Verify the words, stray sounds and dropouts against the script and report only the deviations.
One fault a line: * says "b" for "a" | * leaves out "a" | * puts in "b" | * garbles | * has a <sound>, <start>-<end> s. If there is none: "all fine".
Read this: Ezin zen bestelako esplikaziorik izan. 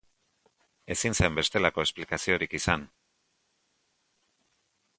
all fine